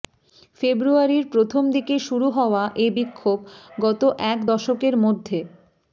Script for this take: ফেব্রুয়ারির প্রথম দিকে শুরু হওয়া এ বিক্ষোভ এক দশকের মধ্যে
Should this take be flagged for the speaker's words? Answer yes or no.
yes